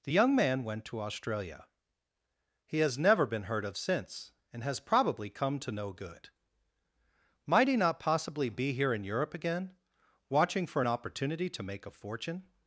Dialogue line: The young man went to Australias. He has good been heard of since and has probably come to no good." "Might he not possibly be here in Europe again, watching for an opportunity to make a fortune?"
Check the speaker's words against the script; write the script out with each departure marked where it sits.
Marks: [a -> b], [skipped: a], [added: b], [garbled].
The young man went to [Australias. -> Australia] He has [good -> never] been heard of since and has probably come to no good." "Might he not possibly be here in Europe again, watching for an opportunity to make a fortune?"